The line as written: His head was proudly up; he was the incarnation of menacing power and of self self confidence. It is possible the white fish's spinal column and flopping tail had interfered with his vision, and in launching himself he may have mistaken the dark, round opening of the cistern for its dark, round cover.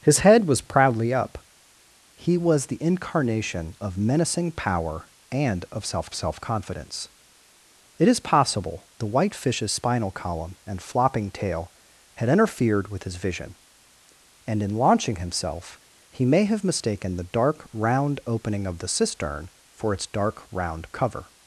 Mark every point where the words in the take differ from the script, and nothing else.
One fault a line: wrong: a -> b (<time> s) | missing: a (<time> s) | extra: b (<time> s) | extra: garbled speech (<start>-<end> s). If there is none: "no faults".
no faults